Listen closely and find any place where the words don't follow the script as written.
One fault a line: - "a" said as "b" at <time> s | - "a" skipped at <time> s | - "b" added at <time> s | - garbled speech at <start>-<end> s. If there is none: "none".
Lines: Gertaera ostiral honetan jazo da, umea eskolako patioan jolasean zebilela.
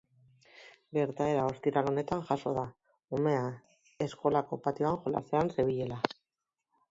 none